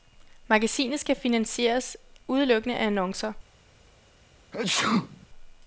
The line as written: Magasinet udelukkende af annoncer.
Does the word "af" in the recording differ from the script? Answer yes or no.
no